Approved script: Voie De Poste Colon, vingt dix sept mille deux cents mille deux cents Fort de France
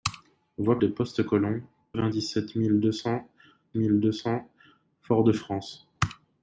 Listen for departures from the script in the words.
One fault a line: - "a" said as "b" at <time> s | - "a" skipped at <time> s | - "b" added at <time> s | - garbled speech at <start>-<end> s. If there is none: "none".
none